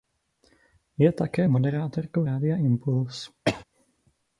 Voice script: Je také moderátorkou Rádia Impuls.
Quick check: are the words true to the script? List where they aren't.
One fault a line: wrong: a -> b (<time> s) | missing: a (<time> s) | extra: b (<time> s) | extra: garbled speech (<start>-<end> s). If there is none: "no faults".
no faults